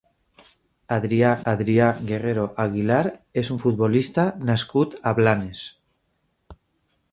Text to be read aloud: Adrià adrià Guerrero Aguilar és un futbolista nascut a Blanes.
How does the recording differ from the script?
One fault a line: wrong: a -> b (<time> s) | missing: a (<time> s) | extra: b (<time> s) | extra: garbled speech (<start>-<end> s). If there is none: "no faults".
no faults